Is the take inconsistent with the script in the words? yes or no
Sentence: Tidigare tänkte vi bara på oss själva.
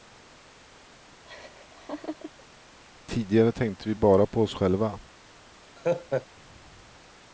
no